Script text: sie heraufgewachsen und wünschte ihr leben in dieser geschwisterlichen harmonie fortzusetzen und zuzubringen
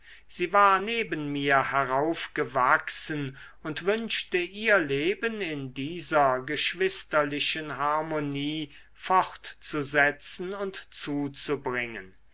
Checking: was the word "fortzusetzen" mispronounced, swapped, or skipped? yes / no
no